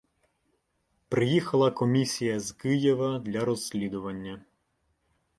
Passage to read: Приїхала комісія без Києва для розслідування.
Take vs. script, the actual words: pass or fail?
fail